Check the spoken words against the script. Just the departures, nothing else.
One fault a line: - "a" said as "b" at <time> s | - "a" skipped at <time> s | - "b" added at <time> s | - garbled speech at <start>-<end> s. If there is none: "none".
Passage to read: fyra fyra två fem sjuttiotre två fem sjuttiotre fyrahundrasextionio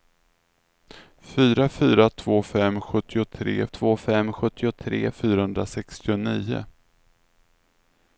none